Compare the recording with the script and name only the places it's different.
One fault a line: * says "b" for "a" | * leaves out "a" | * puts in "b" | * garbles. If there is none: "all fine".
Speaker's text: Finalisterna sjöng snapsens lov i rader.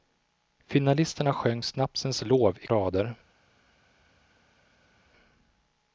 all fine